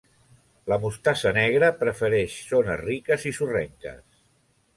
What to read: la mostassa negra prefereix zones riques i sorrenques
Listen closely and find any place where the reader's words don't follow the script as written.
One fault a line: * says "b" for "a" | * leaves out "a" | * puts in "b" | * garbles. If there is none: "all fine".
all fine